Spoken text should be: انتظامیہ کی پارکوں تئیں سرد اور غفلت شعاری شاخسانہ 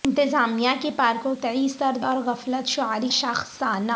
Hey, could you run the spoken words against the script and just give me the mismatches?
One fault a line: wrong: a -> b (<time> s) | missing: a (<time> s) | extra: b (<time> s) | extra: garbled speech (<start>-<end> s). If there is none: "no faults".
no faults